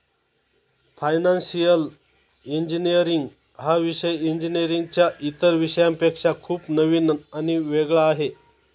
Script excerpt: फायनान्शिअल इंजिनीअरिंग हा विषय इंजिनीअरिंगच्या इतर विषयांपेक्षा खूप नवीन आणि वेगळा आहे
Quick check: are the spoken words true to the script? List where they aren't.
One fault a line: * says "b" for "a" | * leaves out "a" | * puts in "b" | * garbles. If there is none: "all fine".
all fine